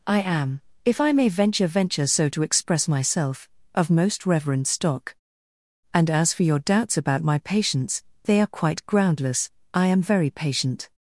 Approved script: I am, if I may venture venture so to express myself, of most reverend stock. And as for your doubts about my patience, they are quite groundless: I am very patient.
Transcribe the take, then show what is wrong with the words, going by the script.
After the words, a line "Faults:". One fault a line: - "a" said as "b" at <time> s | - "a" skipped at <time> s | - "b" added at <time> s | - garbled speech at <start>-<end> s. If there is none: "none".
I am, if I may venture venture so to express myself, of most reverend stock. And as for your doubts about my patience, they are quite groundless: I am very patient.
Faults:
none